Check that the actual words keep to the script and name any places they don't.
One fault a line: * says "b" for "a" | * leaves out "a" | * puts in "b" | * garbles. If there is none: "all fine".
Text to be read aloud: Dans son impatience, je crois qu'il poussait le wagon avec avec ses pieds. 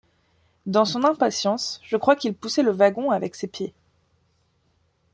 * leaves out "avec"